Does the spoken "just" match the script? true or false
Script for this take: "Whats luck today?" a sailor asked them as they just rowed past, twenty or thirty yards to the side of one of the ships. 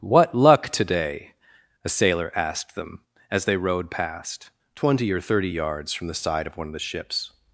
false